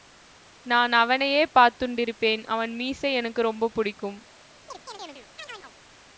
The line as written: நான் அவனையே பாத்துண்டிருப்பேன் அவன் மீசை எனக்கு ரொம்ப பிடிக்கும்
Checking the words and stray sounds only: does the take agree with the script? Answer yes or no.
no